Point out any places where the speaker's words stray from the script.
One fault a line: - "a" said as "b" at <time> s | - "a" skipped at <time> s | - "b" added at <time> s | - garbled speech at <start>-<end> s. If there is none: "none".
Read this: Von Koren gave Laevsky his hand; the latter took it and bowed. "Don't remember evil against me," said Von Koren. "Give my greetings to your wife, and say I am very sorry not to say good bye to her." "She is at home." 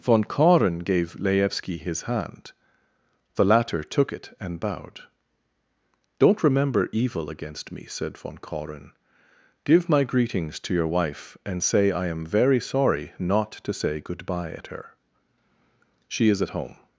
- "to" said as "at" at 14.5 s